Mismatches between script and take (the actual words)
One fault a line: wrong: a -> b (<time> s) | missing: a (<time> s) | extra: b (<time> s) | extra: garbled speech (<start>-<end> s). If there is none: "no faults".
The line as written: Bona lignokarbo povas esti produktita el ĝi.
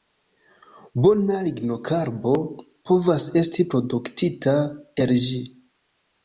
no faults